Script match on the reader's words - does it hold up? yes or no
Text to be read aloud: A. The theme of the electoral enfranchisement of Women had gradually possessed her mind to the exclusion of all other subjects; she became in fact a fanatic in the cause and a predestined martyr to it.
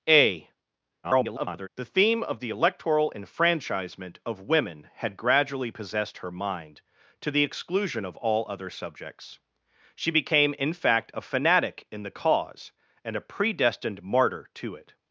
no